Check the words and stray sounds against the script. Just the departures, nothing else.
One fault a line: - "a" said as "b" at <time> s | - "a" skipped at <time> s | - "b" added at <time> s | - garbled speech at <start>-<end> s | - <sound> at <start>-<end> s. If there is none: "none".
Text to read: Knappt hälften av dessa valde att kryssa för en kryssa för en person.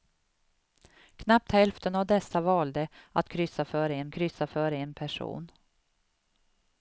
none